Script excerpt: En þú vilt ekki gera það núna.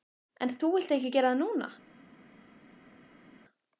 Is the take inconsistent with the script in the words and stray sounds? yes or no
no